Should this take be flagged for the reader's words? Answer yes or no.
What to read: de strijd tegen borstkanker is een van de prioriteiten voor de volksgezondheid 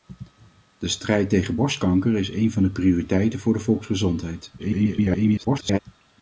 yes